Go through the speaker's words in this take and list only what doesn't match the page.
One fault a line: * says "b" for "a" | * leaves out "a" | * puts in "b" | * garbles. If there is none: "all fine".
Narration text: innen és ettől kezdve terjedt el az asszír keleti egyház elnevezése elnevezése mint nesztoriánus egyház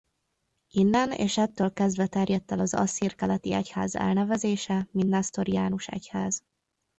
* leaves out "elnevezése"